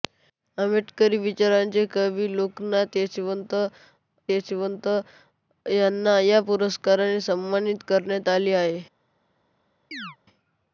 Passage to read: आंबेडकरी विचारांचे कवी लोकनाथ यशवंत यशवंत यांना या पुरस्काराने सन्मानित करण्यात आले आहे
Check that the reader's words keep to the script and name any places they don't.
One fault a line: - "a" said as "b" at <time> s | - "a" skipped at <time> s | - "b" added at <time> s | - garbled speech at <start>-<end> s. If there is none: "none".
none